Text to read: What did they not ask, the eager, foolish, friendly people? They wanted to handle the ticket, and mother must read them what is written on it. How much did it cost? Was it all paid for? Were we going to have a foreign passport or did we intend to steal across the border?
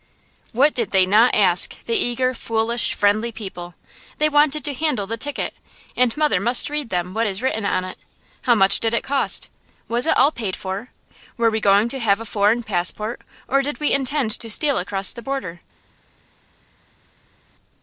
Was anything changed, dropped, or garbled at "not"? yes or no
no